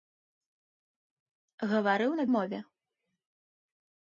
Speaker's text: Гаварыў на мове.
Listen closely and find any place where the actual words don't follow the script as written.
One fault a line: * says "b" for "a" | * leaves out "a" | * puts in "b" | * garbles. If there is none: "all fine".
all fine